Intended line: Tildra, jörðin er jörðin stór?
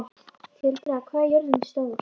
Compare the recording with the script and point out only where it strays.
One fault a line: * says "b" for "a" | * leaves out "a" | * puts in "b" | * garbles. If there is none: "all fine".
* says "hvað" for "jörðin"